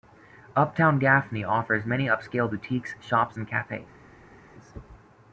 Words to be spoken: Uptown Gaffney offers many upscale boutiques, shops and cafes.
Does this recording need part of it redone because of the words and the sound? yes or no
no